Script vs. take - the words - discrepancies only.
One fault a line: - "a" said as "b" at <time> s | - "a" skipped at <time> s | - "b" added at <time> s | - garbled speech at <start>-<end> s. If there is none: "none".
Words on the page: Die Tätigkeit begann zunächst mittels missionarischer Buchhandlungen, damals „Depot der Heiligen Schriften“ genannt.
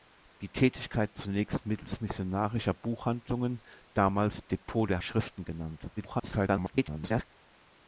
- "begann" skipped at 1.1 s
- "Heiligen" skipped at 5.0 s
- garbled speech at 6.0-7.2 s